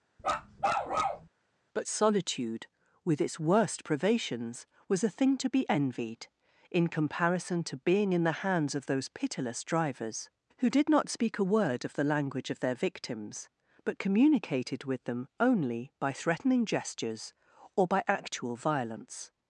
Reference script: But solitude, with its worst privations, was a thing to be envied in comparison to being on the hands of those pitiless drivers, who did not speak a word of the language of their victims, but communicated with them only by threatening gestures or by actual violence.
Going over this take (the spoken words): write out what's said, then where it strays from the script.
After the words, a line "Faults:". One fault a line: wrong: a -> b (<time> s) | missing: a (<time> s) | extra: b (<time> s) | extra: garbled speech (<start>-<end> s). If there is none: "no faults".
But solitude, with its worst privations, was a thing to be envied in comparison to being in the hands of those pitiless drivers, who did not speak a word of the language of their victims, but communicated with them only by threatening gestures or by actual violence.
Faults:
wrong: on -> in (8.1 s)